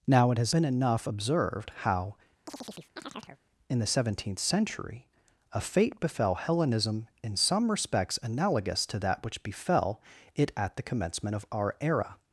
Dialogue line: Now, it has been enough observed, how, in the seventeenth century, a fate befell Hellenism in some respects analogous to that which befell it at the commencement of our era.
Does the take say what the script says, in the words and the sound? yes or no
no